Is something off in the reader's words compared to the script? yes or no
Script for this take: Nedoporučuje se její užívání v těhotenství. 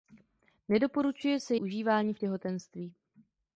yes